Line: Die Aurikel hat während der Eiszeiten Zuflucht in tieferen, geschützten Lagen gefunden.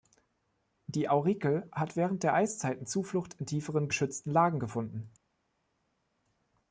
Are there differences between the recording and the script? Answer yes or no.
no